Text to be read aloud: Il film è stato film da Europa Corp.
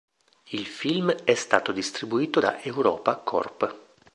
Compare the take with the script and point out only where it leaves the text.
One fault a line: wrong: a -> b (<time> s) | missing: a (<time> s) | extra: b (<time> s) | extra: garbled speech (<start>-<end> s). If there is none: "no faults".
wrong: film -> distribuito (1.7 s)